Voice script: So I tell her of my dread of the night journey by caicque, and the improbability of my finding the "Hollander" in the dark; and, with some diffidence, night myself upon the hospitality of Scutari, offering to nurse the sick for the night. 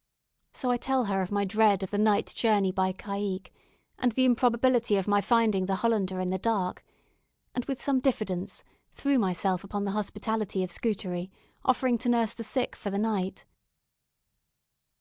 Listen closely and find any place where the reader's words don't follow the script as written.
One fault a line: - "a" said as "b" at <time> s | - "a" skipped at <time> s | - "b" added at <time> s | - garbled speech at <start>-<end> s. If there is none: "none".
- "night" said as "threw" at 8.9 s